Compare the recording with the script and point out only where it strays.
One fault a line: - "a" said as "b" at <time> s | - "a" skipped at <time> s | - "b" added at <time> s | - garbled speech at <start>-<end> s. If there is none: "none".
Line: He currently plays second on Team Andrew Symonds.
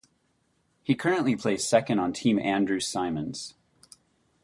none